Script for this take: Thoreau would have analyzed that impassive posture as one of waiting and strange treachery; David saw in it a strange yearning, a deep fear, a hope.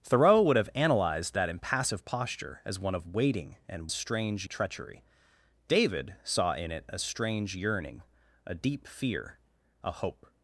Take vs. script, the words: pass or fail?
pass